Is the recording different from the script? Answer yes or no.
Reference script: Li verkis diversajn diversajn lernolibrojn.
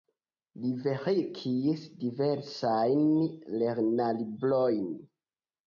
yes